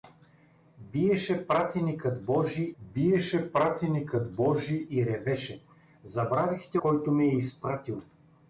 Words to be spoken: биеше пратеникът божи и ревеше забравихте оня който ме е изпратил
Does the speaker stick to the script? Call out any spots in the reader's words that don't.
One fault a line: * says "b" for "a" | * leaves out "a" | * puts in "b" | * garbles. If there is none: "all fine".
* puts in "биеше пратеникът божи"
* leaves out "оня"